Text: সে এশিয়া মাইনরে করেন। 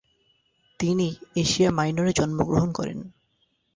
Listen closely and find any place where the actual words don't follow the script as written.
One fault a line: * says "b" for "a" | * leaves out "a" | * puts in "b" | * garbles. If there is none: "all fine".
* says "তিনি" for "সে"
* puts in "জন্মগ্রহণ"